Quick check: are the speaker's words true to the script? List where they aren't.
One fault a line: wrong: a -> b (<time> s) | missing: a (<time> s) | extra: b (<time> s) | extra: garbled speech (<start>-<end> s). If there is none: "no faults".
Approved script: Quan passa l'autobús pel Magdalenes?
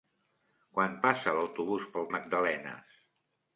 no faults